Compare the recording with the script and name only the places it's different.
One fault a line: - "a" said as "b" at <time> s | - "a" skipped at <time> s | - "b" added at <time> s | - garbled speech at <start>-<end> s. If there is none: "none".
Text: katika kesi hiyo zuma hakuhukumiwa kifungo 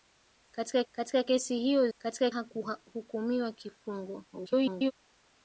- "katika" added at 0.9 s
- "zuma" said as "katika" at 2.0 s
- garbled speech at 4.3-4.9 s